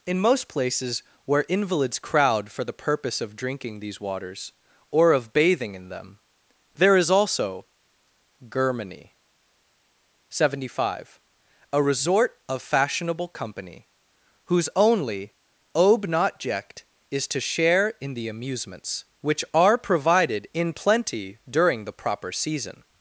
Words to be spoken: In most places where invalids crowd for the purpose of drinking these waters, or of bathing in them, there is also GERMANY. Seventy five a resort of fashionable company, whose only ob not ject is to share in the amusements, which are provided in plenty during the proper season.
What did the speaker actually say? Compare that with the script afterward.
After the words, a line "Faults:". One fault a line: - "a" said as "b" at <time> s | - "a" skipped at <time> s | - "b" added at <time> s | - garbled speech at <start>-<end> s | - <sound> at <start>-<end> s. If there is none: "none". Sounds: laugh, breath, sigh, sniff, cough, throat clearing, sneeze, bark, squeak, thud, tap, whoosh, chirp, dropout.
In most places where invalids crowd for the purpose of drinking these waters, or of bathing in them, there is also GERMANY. Seventy five a resort of fashionable company, whose only ob not ject is to share in the amusements, which are provided in plenty during the proper season.
Faults:
none